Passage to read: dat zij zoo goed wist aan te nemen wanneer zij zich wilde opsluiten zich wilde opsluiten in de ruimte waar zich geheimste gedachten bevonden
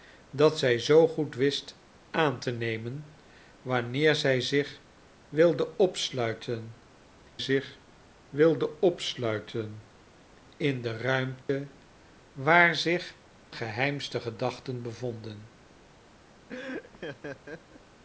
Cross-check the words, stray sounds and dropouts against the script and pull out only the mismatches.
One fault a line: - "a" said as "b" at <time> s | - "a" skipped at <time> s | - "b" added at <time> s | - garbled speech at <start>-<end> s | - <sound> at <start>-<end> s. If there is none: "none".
- dropout at 11.4-11.5 s
- laugh at 16.5-17.8 s